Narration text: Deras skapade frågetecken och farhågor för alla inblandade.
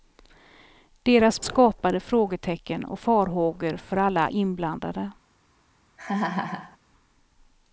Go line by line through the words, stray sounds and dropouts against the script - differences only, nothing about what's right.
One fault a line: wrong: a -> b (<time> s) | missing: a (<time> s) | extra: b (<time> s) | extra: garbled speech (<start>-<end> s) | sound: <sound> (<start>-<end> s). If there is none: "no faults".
sound: laugh (6.0-6.8 s)